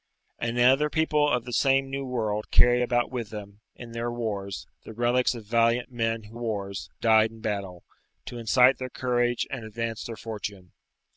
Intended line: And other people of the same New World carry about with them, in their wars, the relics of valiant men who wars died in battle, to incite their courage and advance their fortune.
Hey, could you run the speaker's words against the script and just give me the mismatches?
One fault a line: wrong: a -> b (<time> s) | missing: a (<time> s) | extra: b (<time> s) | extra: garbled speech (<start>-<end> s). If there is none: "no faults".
no faults